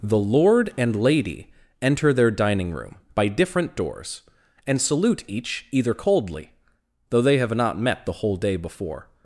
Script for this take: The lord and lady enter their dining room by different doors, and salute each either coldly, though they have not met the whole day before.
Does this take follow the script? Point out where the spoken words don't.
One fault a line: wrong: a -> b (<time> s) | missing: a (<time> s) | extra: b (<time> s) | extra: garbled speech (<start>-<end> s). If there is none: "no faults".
no faults